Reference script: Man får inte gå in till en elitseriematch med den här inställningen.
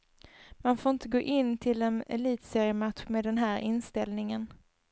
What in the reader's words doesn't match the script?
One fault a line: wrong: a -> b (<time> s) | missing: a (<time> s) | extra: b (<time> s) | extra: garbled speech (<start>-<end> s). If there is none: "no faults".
no faults